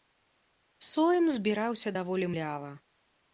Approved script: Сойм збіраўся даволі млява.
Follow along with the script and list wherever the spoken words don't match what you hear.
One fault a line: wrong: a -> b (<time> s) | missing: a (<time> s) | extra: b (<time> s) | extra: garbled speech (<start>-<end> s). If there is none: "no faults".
no faults